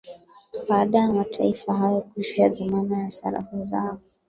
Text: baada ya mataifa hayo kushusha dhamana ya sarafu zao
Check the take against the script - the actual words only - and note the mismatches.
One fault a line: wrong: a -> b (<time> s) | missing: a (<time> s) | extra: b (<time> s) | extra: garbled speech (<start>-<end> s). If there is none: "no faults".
no faults